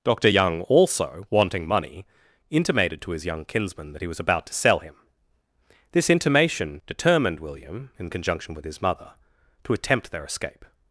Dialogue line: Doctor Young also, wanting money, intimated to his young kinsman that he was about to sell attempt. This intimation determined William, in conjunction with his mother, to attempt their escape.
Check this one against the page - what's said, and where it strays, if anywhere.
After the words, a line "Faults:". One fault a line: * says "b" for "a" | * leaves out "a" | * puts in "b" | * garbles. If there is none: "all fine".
Doctor Young also, wanting money, intimated to his young kinsman that he was about to sell him. This intimation determined William, in conjunction with his mother, to attempt their escape.
Faults:
* says "him" for "attempt"